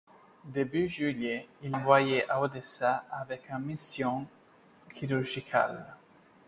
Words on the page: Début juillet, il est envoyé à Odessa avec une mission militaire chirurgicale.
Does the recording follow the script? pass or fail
fail